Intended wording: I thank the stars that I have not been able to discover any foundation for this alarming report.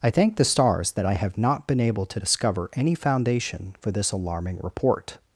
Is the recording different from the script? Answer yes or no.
no